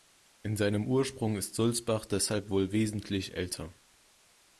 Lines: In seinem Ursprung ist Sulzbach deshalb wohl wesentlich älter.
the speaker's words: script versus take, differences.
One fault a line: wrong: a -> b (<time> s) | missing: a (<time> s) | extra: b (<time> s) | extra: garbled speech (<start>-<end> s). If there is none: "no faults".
no faults